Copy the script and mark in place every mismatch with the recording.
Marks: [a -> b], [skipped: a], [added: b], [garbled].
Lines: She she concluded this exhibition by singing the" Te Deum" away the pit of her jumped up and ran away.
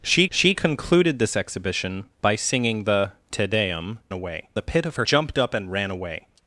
She she concluded this exhibition by singing the" Te Deum" away the pit of her jumped up and ran away.